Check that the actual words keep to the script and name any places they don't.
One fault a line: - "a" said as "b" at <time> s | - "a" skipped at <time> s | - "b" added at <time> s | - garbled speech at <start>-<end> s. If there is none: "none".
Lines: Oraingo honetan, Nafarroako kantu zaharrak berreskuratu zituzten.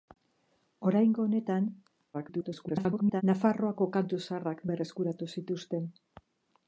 - garbled speech at 2.1-3.2 s